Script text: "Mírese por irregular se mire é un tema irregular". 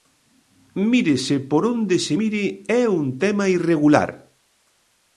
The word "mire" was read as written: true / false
true